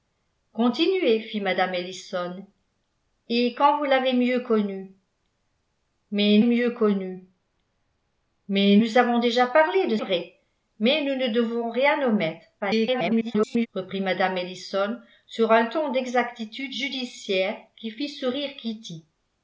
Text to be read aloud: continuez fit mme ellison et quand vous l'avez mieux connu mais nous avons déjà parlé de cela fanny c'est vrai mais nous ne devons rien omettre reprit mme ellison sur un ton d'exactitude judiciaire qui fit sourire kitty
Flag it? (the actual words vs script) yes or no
yes